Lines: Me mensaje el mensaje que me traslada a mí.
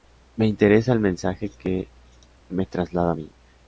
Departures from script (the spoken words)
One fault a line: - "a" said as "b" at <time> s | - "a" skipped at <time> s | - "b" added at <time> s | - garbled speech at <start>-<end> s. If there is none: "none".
- "mensaje" said as "interesa" at 0.5 s